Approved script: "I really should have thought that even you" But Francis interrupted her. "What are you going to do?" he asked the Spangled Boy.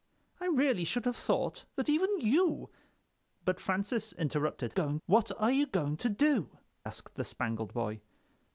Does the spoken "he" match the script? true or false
false